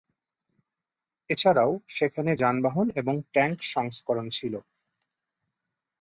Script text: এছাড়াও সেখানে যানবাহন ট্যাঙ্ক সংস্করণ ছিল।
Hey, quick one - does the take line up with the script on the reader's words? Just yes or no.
no